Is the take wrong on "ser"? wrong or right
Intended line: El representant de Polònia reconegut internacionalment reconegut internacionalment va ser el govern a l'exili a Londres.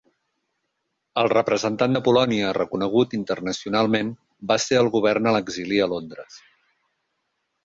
right